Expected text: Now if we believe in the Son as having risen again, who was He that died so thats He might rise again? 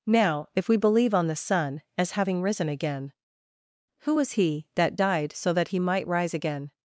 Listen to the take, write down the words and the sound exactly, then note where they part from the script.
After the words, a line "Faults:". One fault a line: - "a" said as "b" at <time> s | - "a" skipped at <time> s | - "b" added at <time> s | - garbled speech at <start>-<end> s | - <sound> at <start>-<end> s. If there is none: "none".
Now if we believe on the Son as having risen again, who was He that died so that He might rise again?
Faults:
- "in" said as "on" at 1.1 s
- "thats" said as "that" at 5.5 s